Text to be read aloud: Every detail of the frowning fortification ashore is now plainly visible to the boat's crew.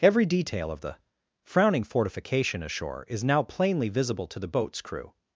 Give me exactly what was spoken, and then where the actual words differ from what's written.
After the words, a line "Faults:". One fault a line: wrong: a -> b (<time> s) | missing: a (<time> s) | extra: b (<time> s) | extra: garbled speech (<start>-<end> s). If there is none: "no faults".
Every detail of the frowning fortification ashore is now plainly visible to the boat's crew.
Faults:
no faults